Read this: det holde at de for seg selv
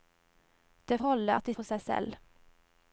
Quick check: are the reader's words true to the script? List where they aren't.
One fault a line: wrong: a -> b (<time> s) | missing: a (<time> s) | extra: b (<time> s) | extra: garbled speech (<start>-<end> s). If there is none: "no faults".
no faults